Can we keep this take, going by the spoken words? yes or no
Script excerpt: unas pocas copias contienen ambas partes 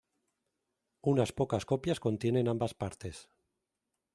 yes